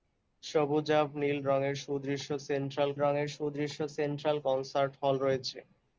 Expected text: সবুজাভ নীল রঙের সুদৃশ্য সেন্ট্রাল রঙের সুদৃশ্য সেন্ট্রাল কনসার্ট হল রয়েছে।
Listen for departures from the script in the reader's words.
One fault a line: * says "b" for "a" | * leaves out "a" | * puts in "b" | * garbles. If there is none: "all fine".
all fine